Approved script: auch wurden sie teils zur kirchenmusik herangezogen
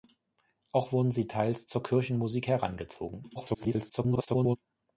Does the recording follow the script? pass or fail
fail